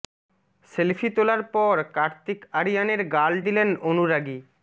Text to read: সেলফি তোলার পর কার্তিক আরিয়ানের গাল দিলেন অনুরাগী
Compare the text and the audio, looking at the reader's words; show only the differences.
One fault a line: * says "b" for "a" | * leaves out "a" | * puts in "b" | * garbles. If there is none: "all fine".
all fine